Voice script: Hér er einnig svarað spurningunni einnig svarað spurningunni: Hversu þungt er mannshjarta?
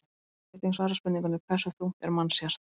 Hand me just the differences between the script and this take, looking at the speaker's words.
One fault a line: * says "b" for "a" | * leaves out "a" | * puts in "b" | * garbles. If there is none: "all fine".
* leaves out "einnig svarað spurningunni"